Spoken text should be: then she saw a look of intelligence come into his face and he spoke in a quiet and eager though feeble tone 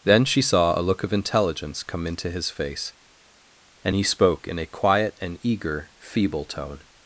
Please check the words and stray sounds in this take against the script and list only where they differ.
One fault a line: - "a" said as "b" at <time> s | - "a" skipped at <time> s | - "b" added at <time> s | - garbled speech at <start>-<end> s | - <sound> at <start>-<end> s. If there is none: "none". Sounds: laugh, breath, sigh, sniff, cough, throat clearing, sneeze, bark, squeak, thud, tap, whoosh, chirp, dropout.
- "though" skipped at 5.9 s